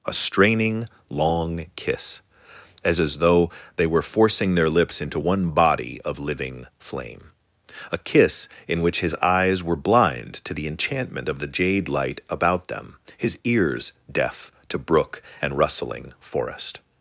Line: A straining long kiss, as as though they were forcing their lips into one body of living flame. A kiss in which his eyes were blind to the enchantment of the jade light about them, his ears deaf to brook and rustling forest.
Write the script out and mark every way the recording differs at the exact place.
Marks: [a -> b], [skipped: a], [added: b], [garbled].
A straining long kiss, as as though they were forcing their lips into one body of living flame. A kiss in which his eyes were blind to the enchantment of the jade light about them, his ears deaf to brook and rustling forest.